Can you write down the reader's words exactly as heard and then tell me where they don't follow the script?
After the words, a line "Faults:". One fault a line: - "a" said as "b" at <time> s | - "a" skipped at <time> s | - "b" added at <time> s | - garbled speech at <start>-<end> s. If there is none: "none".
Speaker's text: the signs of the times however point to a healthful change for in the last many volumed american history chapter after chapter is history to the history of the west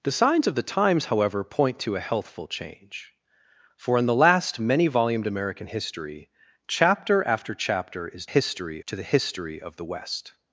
the signs of the times however point to a healthful change for in the last many volumed american history chapter after chapter is history to the history of the west
Faults:
none